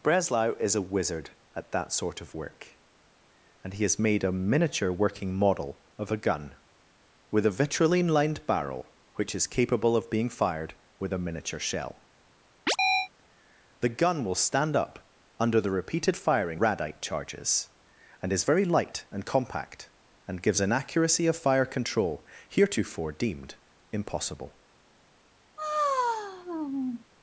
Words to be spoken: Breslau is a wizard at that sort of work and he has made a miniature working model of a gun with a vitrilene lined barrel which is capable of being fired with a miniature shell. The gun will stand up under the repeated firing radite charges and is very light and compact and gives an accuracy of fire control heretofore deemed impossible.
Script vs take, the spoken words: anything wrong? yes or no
no